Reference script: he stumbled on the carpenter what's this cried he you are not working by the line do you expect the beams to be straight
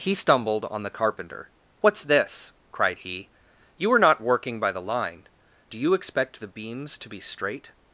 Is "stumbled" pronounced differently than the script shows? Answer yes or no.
no